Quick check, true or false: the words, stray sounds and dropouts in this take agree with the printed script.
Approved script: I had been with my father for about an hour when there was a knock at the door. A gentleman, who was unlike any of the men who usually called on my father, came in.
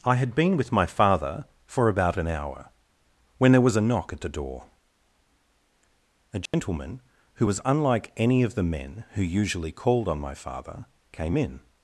false